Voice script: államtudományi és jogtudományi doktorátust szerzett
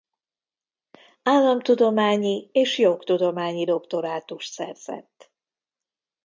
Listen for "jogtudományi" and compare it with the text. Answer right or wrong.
right